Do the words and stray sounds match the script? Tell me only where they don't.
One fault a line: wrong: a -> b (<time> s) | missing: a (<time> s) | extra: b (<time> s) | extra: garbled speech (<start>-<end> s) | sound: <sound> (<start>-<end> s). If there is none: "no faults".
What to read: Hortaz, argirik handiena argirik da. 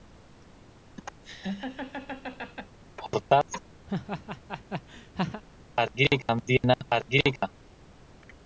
sound: laugh (1.2-2.8 s)
sound: laugh (3.9-5.4 s)